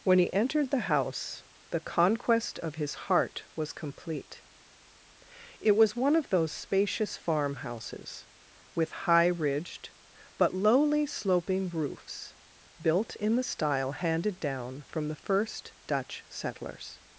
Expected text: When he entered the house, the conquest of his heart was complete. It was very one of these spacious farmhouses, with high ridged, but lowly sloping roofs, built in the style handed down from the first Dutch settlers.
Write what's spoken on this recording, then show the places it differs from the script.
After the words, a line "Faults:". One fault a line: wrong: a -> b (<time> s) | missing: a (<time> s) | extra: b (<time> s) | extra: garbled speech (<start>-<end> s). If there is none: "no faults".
When he entered the house, the conquest of his heart was complete. It was one of those spacious farmhouses, with high ridged, but lowly sloping roofs, built in the style handed down from the first Dutch settlers.
Faults:
missing: very (6.0 s)
wrong: these -> those (6.3 s)